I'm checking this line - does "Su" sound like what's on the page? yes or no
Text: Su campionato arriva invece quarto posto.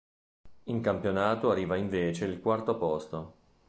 no